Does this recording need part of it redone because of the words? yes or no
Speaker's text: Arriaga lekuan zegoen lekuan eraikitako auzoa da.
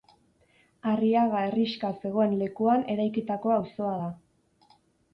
yes